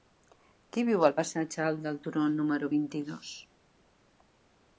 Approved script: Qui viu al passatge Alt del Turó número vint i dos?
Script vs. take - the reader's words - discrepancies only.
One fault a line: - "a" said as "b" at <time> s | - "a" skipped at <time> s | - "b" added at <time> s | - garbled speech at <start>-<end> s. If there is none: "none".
none